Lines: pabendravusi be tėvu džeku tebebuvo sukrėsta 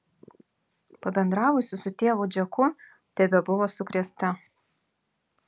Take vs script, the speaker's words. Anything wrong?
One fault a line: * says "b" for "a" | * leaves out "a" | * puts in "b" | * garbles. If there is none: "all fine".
* says "su" for "be"